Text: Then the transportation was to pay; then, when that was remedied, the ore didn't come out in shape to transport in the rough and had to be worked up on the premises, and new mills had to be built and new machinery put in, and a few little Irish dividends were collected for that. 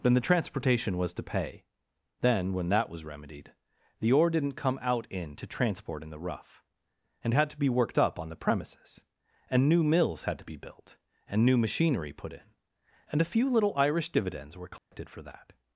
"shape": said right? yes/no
no